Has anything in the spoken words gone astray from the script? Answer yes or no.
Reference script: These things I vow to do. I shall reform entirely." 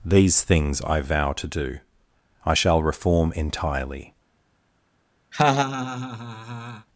no